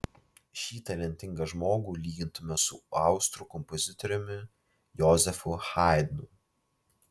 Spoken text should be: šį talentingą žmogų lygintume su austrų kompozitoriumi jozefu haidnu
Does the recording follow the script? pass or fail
pass